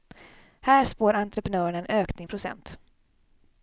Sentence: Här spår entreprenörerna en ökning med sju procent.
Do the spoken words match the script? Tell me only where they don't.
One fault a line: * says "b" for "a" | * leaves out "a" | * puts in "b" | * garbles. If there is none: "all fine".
* leaves out "med sju"